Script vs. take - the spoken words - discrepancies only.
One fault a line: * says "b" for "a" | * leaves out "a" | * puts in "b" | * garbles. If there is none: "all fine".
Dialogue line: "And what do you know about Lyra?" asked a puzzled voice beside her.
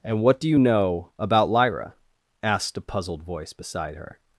all fine